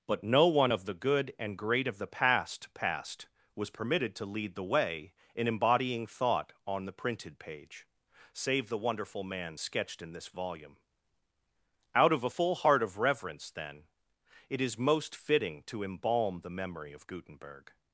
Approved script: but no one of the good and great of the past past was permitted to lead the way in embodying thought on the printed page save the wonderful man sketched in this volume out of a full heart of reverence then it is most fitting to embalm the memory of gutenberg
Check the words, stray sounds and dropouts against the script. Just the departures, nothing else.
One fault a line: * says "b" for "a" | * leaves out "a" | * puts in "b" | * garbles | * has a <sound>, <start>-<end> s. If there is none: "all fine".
all fine